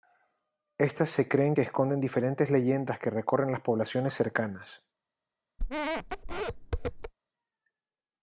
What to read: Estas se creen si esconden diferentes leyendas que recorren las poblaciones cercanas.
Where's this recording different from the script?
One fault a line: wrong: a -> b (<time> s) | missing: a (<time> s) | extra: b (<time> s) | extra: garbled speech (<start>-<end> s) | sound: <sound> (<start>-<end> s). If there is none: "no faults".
wrong: si -> que (1.5 s)
sound: squeak (5.6-7.1 s)